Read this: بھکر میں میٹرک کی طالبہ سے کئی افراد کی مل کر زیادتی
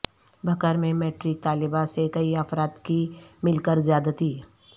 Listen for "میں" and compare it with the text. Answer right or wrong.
right